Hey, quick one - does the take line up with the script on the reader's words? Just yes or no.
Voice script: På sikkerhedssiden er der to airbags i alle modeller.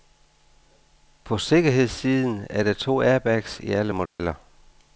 yes